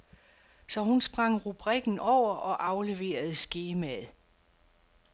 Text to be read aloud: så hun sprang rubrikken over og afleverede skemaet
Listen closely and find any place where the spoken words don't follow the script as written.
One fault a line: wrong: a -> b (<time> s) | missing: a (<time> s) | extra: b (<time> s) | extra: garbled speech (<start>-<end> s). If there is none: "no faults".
no faults